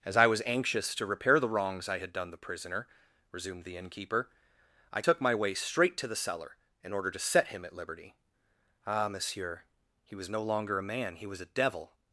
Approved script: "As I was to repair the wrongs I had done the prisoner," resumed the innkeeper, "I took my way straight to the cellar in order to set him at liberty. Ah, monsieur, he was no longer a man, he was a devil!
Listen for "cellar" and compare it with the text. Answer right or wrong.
right